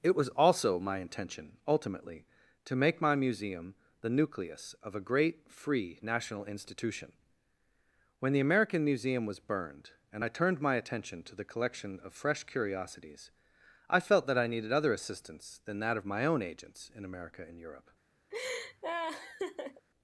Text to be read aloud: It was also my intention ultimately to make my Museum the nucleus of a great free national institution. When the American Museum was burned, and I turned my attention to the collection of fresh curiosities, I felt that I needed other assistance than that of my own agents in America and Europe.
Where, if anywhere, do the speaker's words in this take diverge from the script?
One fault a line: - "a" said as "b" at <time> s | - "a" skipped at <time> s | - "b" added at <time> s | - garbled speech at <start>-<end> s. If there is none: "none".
none